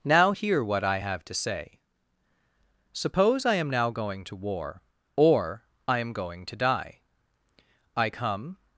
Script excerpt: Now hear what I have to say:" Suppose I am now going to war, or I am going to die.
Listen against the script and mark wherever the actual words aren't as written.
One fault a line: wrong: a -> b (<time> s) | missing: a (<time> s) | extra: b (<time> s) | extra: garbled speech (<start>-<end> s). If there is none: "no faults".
extra: I come (8.0 s)